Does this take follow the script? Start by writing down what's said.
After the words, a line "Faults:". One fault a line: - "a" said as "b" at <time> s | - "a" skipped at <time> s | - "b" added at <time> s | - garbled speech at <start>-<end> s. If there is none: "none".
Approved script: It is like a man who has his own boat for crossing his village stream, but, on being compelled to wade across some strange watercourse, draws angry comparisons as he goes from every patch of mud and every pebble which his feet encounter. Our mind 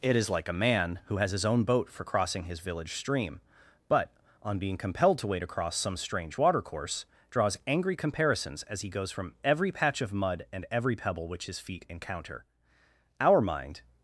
It is like a man who has his own boat for crossing his village stream, but, on being compelled to wade across some strange watercourse, draws angry comparisons as he goes from every patch of mud and every pebble which his feet encounter. Our mind
Faults:
none